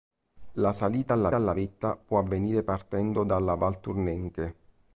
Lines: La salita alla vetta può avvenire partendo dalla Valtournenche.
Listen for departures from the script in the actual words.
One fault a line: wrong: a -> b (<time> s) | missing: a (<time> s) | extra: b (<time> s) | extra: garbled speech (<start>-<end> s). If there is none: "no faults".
extra: alla (1.3 s)